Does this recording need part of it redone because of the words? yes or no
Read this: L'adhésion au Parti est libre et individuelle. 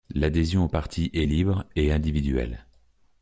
no